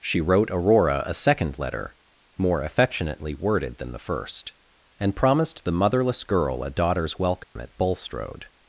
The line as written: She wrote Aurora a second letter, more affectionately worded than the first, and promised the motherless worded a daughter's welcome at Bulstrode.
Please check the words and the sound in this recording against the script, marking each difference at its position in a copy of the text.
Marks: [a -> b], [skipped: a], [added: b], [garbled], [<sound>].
She wrote Aurora a second letter, more affectionately worded than the first, and promised the motherless [worded -> girl] a daughter's welcome [dropout] at Bulstrode.